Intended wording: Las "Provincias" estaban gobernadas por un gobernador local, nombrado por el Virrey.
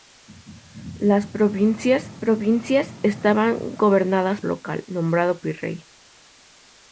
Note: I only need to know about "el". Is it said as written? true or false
false